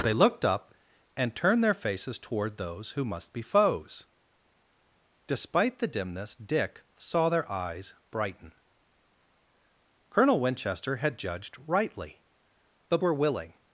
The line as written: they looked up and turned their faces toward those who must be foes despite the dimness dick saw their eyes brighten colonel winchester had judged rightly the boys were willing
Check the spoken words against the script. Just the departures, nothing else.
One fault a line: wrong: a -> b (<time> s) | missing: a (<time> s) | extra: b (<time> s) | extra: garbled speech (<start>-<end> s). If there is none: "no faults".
missing: boys (13.0 s)